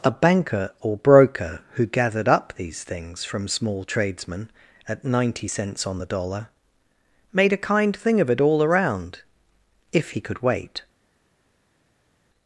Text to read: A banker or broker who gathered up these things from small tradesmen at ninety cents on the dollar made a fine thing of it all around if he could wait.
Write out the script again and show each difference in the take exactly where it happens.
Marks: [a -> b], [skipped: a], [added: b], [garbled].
A banker or broker who gathered up these things from small tradesmen at ninety cents on the dollar made a [fine -> kind] thing of it all around if he could wait.